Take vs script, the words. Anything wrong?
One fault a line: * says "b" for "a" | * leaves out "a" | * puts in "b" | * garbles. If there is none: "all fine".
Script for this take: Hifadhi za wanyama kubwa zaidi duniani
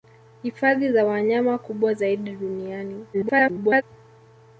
* garbles